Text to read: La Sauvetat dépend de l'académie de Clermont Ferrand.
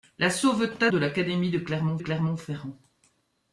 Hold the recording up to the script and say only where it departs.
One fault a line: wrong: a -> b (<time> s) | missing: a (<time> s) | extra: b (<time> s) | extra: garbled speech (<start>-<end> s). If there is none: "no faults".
missing: dépend (0.9 s)
extra: Clermont (2.0 s)